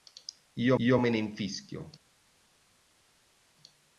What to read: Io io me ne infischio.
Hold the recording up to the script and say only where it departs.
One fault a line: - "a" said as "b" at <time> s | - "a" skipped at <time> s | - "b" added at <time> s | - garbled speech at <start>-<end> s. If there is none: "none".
none